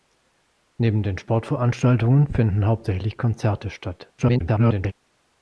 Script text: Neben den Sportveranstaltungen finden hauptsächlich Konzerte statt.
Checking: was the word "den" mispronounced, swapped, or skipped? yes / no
no